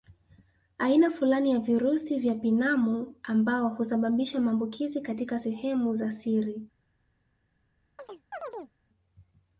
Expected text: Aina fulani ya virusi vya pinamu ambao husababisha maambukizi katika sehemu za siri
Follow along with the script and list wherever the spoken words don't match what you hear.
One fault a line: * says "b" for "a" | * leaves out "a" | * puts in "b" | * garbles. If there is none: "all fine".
all fine